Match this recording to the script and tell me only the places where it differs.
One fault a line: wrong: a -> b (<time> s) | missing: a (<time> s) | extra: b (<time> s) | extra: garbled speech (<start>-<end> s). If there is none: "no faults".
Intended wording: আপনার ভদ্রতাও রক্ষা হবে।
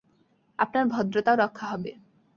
no faults